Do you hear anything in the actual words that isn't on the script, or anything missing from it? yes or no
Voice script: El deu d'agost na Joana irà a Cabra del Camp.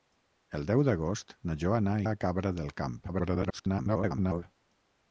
yes